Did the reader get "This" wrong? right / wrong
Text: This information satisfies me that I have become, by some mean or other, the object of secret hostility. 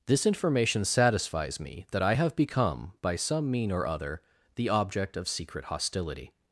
right